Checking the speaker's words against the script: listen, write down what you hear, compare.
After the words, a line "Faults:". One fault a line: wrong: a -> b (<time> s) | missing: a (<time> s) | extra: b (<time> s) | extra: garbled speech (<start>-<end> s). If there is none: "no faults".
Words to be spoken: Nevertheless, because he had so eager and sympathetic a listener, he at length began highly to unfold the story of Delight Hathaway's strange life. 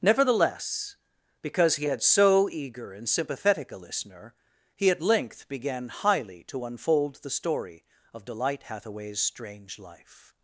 Nevertheless, because he had so eager and sympathetic a listener, he at length began highly to unfold the story of Delight Hathaway's strange life.
Faults:
no faults